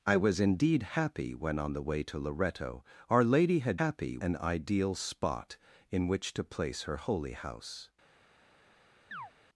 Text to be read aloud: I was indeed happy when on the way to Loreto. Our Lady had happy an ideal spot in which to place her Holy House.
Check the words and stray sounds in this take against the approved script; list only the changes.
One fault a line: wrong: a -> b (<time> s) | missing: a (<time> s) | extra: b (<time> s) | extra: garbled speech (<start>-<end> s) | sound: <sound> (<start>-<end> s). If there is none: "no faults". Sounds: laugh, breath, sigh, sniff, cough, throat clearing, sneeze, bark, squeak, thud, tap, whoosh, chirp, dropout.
sound: chirp (9.1-9.3 s)